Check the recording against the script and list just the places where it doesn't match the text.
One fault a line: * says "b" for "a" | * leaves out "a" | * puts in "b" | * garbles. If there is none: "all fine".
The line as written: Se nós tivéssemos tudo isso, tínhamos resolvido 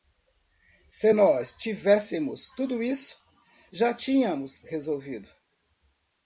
* puts in "já"